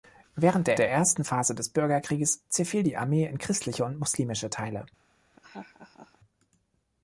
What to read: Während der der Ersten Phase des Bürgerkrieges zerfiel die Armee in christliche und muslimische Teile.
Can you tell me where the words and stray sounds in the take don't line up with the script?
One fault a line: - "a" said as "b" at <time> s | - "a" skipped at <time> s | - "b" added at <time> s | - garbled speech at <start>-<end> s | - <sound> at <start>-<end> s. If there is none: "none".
- laugh at 5.3-6.2 s